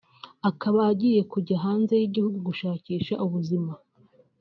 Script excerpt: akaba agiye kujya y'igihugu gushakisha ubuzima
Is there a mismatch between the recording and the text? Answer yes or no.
yes